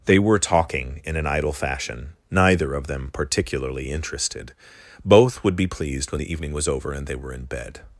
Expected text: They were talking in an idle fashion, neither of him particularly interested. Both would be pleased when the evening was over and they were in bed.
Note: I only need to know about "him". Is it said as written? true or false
false